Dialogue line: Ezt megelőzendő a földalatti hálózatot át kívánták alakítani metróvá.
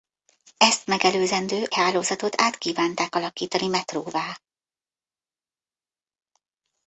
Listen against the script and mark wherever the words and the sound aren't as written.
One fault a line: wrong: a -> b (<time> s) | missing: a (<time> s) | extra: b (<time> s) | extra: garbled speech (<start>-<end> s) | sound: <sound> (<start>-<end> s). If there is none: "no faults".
missing: a földalatti (1.7 s)